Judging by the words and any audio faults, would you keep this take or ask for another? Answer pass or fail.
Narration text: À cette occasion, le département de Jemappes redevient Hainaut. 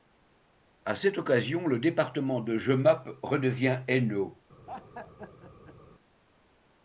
fail